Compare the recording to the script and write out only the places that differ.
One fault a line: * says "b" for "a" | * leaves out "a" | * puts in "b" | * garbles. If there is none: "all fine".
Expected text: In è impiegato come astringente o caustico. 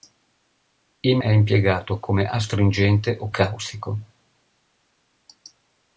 all fine